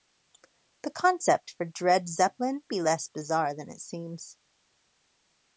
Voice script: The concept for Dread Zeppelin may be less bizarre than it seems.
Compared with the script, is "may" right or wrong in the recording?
wrong